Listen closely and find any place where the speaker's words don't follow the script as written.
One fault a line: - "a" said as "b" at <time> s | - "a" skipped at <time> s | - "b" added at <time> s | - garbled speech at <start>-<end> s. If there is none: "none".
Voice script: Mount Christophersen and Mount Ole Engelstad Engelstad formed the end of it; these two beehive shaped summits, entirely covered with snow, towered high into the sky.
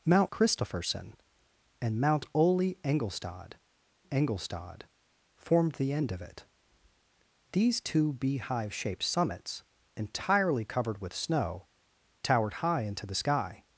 none